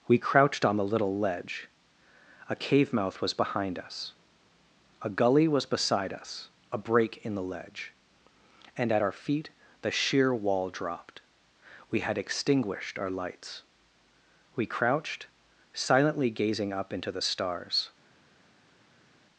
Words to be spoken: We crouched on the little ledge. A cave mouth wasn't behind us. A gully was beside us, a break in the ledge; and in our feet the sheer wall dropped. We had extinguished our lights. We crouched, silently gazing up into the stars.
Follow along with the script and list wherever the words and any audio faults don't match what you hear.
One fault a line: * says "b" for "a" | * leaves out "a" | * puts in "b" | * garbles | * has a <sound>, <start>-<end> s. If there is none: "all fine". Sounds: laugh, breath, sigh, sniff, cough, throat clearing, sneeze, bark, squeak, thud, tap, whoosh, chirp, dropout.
* says "was" for "wasn't"
* says "at" for "in"